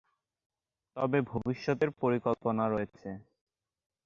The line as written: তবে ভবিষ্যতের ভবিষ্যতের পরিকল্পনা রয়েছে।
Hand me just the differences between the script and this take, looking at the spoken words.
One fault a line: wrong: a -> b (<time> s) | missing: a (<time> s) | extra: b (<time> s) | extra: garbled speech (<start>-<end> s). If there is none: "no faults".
missing: ভবিষ্যতের (1.9 s)